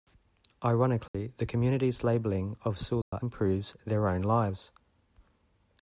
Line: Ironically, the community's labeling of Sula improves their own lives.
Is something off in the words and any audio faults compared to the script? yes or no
yes